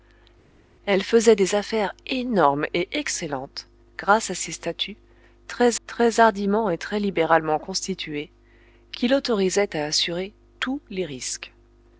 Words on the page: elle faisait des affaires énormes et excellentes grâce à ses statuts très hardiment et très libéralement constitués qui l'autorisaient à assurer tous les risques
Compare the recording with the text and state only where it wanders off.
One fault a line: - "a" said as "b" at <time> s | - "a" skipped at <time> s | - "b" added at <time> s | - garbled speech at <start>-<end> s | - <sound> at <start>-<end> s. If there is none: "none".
- "très" added at 5.9 s